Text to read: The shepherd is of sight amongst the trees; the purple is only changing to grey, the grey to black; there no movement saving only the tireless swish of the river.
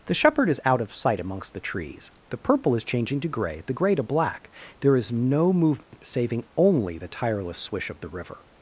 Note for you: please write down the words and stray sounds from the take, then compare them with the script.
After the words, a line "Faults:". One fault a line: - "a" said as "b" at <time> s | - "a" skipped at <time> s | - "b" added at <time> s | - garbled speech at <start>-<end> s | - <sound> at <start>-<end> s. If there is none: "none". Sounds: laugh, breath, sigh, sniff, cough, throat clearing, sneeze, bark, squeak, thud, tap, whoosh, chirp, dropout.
The shepherd is out of sight amongst the trees; the purple is changing to grey, the grey to black; there is no movement saving only the tireless swish of the river.
Faults:
- "out" added at 0.7 s
- "only" skipped at 2.8 s
- "is" added at 5.0 s
- dropout at 5.8-5.9 s